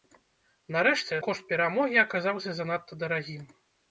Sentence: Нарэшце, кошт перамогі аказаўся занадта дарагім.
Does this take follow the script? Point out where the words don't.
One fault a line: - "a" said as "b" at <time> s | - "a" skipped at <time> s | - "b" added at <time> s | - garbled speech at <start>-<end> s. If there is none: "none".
none